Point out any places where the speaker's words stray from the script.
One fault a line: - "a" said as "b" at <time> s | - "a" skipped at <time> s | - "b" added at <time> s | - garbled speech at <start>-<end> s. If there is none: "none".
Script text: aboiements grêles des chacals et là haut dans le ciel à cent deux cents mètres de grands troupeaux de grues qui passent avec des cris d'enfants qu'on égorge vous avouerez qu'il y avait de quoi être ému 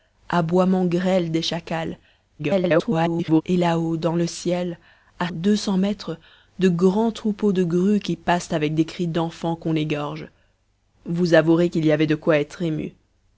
- garbled speech at 2.4-3.4 s
- "cent" skipped at 5.3 s